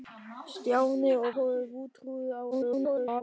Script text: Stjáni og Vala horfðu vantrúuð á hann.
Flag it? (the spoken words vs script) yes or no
yes